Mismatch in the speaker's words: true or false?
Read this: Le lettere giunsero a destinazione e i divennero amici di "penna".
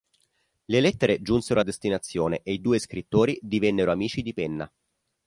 true